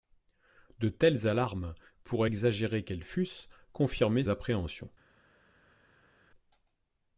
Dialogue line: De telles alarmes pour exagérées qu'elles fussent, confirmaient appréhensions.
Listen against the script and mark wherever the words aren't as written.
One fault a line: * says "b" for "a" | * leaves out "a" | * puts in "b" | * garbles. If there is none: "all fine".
all fine